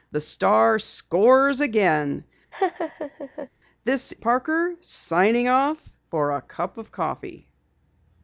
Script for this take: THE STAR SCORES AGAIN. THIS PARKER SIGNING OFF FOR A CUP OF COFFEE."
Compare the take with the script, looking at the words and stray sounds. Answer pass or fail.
fail